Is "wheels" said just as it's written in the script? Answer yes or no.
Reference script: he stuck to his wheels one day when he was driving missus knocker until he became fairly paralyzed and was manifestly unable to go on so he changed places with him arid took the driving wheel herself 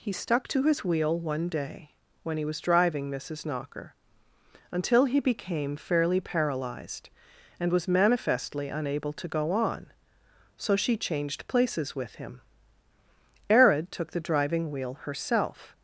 no